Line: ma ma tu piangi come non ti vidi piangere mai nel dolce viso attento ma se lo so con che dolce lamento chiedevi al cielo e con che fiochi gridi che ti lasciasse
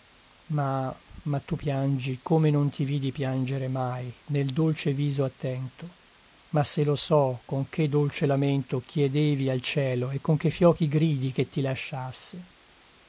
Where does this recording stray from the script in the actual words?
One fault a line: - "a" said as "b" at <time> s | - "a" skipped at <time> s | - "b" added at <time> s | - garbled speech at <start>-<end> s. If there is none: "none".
none